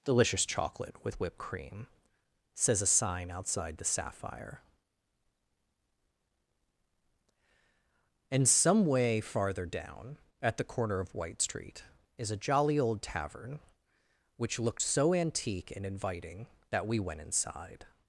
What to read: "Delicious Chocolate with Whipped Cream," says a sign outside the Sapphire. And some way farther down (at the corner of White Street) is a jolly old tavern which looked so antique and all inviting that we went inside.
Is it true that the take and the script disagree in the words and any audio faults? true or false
true